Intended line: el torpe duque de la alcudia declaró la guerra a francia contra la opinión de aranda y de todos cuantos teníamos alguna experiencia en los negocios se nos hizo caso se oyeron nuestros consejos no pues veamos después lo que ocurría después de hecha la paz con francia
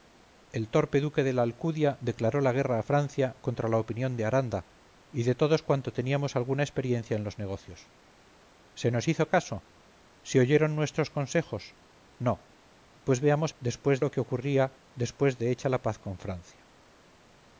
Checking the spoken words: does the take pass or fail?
pass